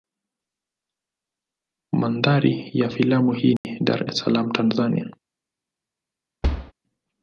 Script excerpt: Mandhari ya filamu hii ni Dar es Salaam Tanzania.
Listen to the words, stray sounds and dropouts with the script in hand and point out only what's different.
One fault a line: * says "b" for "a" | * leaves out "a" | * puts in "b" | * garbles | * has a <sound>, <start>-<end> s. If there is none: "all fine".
* has a dropout, 3.6-3.6 s
* has a thud, 6.4-6.7 s